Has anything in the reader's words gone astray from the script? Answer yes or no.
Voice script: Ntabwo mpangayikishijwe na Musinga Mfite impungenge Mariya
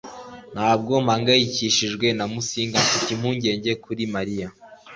yes